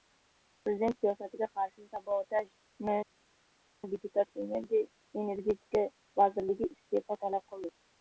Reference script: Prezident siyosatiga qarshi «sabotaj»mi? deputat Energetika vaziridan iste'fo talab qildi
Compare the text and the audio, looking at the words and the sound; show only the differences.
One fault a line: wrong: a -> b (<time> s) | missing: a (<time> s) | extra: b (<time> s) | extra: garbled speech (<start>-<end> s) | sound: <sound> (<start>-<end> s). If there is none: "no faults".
no faults